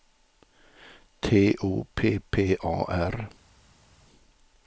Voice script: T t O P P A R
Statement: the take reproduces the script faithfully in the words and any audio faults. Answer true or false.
false